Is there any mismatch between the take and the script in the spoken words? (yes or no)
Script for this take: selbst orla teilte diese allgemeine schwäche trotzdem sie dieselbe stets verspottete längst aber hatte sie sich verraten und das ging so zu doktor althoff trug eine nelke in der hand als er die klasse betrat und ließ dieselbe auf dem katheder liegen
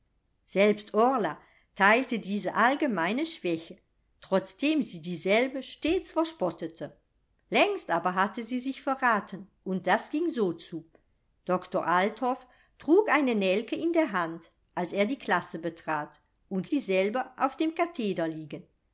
yes